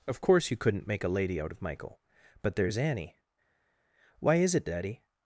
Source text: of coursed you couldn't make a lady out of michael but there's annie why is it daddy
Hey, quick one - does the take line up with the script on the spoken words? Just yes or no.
no